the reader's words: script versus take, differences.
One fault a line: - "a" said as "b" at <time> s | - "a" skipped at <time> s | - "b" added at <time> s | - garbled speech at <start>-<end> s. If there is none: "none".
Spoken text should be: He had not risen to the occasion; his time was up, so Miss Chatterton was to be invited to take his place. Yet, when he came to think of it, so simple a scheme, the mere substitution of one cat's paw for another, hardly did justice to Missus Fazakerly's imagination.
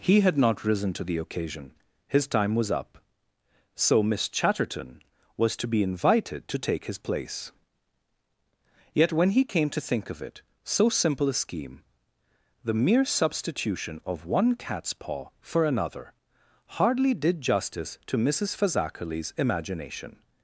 none